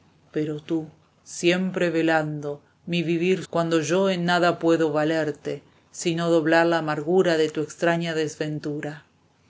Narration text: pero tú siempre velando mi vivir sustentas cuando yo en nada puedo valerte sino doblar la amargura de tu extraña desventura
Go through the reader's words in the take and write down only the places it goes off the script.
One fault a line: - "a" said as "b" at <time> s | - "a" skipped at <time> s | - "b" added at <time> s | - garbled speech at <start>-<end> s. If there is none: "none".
- "sustentas" skipped at 3.4 s